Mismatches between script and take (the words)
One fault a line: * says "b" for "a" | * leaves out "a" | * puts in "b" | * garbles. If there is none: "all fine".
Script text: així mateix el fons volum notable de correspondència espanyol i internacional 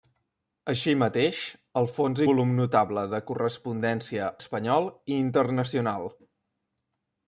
all fine